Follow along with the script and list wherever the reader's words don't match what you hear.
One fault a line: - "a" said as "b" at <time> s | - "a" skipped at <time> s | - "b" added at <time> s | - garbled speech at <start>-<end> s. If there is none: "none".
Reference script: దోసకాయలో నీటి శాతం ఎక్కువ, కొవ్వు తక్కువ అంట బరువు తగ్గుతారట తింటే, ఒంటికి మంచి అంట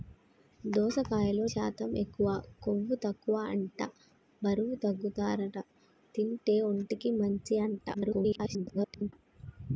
- "నీటి" skipped at 1.4 s
- garbled speech at 7.9-9.1 s